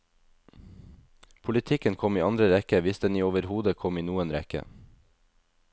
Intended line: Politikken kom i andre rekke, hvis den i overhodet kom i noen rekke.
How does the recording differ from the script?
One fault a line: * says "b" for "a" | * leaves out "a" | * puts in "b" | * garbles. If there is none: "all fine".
all fine